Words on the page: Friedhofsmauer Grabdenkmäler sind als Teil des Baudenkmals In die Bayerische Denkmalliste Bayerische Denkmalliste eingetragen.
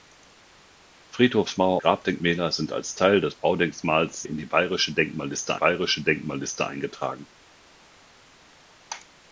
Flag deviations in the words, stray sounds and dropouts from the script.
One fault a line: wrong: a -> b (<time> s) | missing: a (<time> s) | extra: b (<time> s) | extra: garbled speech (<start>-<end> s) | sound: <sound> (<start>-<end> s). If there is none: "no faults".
no faults